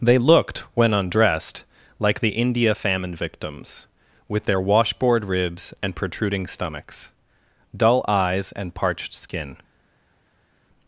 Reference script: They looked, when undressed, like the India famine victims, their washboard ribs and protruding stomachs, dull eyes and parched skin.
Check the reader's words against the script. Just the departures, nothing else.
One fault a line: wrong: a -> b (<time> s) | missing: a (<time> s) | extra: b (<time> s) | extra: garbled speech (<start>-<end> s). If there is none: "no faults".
extra: with (4.3 s)